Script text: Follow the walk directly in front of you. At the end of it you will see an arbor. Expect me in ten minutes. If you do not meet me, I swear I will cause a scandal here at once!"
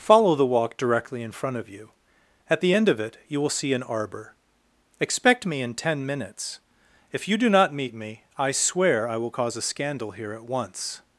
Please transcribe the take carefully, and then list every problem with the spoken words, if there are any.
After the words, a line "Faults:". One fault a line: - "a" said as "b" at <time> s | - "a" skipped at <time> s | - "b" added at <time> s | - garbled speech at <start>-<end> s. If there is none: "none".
Follow the walk directly in front of you. At the end of it you will see an arbor. Expect me in ten minutes. If you do not meet me, I swear I will cause a scandal here at once!"
Faults:
none